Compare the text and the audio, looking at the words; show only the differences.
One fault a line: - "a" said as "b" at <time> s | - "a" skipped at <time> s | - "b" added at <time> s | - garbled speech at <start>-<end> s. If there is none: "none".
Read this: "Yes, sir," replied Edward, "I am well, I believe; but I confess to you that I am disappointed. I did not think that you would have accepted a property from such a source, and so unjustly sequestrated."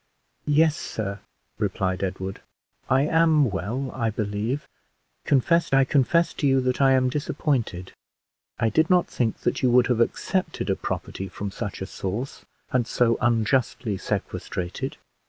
- "but" said as "confess" at 5.2 s